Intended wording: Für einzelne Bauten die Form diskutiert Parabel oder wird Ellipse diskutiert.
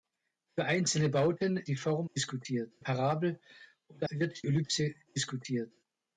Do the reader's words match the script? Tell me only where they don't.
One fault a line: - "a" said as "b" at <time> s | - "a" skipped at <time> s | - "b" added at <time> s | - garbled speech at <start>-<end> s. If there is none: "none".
none